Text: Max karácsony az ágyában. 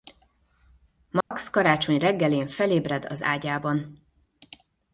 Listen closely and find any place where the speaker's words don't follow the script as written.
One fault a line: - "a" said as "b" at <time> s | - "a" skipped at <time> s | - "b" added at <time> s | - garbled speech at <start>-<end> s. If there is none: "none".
- "reggelén felébred" added at 2.0 s